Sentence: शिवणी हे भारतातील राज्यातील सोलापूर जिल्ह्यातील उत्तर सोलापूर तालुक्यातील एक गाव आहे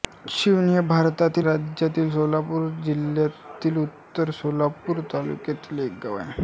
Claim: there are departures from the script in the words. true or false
false